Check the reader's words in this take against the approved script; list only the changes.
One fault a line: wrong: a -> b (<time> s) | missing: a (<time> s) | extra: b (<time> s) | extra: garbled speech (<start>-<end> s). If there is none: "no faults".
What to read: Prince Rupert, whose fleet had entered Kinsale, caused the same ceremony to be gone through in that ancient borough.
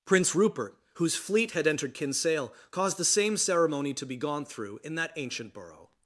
no faults